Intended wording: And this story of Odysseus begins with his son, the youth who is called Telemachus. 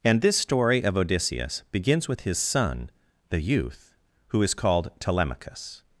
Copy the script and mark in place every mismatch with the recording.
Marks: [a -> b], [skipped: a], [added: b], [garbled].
And this story of Odysseus begins with his son, the youth who is called Telemachus.